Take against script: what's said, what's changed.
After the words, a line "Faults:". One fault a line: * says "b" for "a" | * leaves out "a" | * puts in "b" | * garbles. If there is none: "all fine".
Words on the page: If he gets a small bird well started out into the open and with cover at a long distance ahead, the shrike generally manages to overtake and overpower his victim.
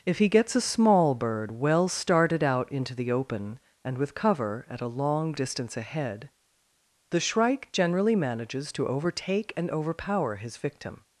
If he gets a small bird well started out into the open and with cover at a long distance ahead, the shrike generally manages to overtake and overpower his victim.
Faults:
all fine